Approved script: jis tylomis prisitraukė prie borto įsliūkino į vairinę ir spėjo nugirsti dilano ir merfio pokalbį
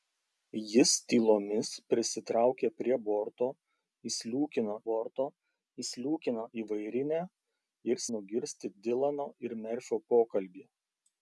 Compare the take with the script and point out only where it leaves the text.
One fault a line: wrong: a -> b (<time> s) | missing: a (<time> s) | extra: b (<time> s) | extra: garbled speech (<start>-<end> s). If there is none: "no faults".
extra: borto įsliūkino (4.9 s)
missing: spėjo (8.0 s)